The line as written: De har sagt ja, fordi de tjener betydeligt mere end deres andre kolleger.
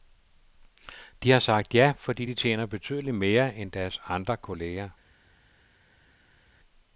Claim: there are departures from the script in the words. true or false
false